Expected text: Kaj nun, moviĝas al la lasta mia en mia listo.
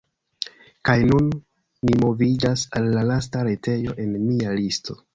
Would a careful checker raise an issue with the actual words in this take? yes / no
yes